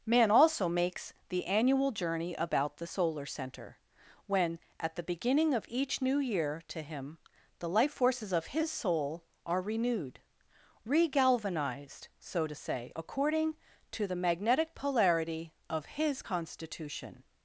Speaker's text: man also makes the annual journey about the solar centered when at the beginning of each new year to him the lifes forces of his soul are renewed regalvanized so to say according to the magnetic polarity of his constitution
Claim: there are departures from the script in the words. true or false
true